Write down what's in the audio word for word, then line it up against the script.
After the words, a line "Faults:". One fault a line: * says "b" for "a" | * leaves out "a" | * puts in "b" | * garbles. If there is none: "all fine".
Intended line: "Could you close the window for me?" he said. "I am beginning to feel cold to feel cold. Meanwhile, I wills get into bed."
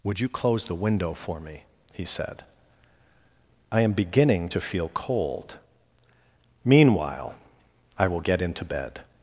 "Would you close the window for me?" he said. "I am beginning to feel cold. Meanwhile, I will get into bed."
Faults:
* says "Would" for "Could"
* leaves out "to feel cold"
* says "will" for "wills"